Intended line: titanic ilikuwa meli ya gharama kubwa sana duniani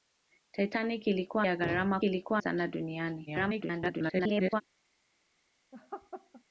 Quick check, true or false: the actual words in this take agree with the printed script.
false